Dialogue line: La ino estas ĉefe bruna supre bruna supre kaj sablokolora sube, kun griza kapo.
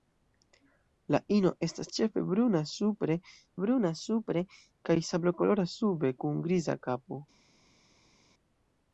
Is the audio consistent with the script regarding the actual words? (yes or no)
yes